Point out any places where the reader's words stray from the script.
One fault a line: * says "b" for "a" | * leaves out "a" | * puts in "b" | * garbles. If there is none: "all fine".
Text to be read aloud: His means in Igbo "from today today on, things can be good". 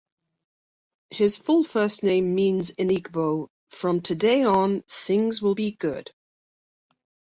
* puts in "full first name"
* leaves out "today"
* says "will" for "can"